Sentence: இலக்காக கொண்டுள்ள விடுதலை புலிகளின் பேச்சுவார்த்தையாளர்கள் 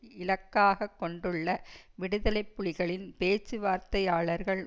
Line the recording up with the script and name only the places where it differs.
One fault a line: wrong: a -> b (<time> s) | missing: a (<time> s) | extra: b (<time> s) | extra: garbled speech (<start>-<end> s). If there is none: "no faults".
no faults